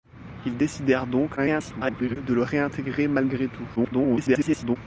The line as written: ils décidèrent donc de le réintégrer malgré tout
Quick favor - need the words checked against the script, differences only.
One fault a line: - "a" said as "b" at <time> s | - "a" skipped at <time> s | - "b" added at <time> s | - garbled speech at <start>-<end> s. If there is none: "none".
- garbled speech at 1.4-2.2 s
- garbled speech at 3.8-4.8 s